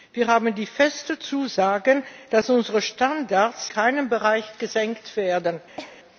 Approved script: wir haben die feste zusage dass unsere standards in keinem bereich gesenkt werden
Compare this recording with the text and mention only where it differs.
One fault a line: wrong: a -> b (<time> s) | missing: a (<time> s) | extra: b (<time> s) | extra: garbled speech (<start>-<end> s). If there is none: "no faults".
missing: in (3.7 s)